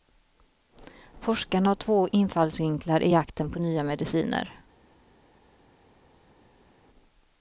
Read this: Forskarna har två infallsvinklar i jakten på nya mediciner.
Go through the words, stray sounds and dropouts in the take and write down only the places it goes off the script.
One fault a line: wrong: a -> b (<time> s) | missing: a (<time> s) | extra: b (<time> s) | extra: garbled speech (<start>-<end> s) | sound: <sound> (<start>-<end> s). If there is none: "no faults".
no faults